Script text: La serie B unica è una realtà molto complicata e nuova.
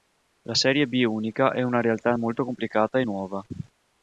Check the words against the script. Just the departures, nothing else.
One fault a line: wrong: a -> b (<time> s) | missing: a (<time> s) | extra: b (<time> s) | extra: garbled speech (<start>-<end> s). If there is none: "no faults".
no faults